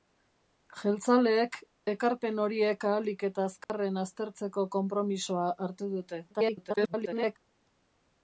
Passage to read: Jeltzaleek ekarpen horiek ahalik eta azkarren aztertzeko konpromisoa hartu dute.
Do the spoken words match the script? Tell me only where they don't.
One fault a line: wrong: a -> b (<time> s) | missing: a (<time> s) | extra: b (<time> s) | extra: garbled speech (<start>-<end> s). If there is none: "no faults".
extra: garbled speech (6.3-7.4 s)